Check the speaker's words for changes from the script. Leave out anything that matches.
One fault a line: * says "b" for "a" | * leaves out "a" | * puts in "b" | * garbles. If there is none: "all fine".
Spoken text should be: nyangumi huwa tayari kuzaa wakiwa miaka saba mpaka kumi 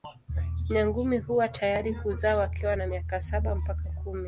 * puts in "na"